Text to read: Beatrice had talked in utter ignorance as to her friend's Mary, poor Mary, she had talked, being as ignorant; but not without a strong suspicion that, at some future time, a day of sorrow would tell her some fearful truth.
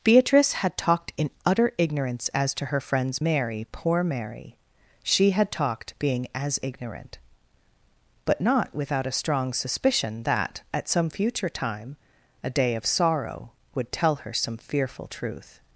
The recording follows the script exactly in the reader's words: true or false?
true